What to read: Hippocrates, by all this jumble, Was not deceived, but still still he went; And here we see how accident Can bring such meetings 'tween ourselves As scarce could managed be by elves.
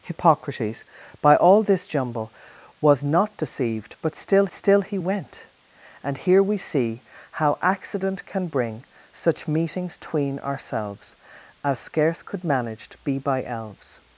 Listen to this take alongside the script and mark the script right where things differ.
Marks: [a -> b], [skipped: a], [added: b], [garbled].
Hippocrates, by all this jumble, Was not deceived, but still still he went; And here we see how accident Can bring such meetings 'tween ourselves As scarce could managed be by elves.